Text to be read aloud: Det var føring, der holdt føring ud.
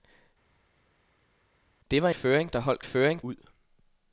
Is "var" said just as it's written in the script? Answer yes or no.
yes